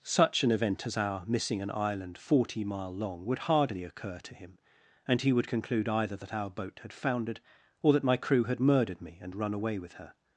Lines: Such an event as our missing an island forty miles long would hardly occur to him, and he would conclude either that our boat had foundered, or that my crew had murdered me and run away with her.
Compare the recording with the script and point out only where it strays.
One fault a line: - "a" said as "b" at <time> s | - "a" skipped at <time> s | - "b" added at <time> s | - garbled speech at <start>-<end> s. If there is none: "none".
- "miles" said as "mile" at 2.6 s